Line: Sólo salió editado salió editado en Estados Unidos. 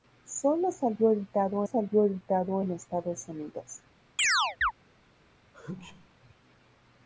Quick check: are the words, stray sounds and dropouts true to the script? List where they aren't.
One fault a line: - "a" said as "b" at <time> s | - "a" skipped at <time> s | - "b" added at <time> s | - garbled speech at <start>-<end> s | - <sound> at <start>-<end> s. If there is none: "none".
- chirp at 4.2-4.7 s
- sneeze at 5.5-6.1 s